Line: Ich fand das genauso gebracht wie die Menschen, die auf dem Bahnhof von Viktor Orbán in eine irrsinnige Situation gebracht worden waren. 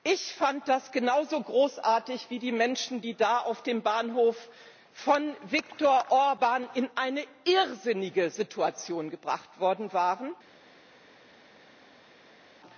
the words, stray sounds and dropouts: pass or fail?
fail